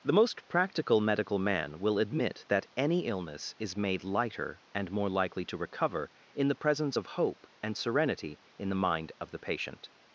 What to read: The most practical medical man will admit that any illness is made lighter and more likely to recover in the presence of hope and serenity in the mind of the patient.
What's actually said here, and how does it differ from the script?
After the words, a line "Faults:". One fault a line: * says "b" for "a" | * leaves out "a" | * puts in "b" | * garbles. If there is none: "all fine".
The most practical medical man will admit that any illness is made lighter and more likely to recover in the presence of hope and serenity in the mind of the patient.
Faults:
all fine